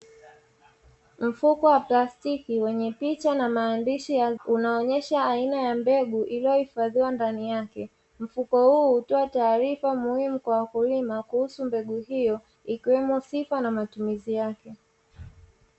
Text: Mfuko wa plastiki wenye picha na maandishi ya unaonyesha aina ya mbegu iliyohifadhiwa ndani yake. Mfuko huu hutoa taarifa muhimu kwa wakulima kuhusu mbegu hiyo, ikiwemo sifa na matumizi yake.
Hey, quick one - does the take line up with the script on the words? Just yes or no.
yes